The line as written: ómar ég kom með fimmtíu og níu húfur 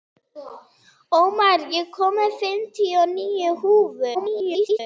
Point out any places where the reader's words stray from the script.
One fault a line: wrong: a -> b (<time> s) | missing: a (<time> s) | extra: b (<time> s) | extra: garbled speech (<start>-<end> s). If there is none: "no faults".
extra: garbled speech (4.1-4.8 s)